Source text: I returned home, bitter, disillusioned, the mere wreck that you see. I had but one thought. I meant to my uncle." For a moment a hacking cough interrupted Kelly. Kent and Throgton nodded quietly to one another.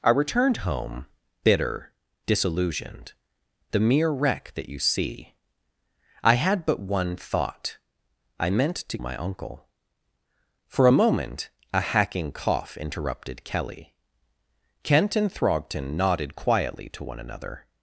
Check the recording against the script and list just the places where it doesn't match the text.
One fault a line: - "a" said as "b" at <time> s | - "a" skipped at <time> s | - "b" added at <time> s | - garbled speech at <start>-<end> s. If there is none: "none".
none